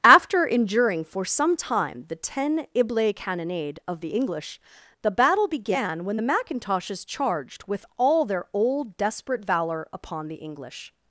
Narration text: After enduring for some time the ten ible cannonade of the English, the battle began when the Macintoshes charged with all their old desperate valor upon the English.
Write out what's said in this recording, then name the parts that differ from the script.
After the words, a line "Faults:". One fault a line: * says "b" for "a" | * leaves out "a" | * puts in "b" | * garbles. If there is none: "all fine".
After enduring for some time the ten ible cannonade of the English, the battle began when the Macintoshes charged with all their old desperate valor upon the English.
Faults:
all fine